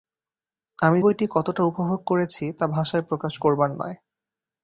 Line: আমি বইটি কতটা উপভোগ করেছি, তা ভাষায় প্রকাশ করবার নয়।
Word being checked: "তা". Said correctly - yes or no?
yes